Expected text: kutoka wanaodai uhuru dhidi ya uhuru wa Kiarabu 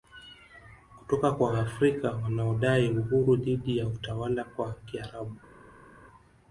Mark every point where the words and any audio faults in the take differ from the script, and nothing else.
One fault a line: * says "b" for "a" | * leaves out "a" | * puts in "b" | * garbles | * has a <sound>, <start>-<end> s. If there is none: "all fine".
* puts in "kwa Waafrika"
* says "utawala" for "uhuru"